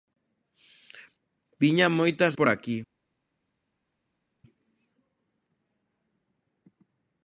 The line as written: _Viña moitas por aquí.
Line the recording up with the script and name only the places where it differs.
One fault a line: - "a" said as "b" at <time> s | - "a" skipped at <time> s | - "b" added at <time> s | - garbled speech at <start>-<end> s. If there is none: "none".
none